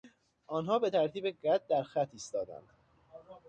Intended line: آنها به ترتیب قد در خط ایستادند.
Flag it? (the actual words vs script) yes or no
no